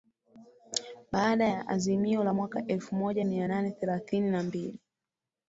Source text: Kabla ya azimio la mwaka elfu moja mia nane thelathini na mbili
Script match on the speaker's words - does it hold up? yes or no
no